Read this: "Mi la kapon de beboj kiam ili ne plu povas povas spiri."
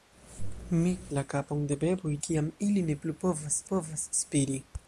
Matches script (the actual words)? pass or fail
pass